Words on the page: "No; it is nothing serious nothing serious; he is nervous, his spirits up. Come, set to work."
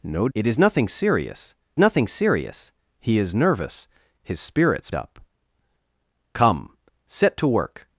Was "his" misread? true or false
false